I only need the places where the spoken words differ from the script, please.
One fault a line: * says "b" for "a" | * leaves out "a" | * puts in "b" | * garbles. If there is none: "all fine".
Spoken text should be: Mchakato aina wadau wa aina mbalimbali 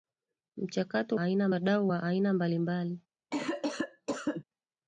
all fine